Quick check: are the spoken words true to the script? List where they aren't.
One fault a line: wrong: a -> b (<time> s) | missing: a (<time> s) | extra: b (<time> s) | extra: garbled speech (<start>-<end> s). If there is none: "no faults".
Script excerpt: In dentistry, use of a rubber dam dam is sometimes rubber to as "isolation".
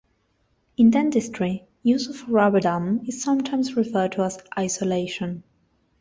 missing: dam (3.0 s)
wrong: rubber -> referred (3.7 s)